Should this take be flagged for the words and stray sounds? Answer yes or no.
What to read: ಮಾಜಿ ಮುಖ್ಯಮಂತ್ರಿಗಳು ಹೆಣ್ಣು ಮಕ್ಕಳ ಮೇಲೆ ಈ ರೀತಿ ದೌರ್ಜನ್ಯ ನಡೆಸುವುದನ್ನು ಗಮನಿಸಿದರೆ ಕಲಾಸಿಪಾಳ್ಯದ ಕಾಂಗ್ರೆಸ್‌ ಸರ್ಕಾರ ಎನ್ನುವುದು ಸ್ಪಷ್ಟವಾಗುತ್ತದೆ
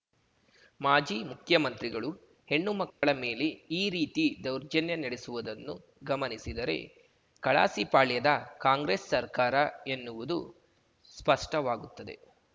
yes